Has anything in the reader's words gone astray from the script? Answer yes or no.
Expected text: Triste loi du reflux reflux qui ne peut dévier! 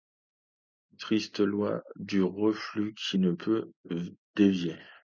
yes